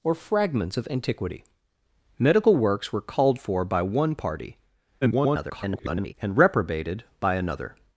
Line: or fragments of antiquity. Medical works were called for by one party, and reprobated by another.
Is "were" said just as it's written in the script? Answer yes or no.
yes